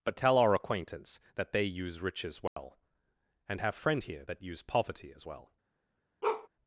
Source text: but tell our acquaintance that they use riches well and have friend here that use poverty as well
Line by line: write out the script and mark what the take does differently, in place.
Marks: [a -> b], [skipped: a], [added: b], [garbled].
but tell our acquaintance that they use riches well and have friend here that use poverty as well